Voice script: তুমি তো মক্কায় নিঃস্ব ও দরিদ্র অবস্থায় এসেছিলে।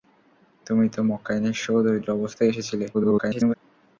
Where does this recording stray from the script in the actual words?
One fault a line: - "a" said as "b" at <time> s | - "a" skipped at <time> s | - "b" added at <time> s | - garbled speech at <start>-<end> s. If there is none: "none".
- garbled speech at 2.9-3.6 s